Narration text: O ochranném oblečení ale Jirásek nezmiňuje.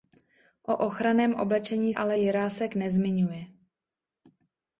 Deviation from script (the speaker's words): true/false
false